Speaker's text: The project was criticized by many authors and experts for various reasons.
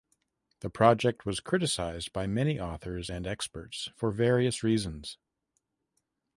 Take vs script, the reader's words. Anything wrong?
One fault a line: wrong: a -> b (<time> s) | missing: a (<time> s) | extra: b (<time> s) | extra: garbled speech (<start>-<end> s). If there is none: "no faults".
no faults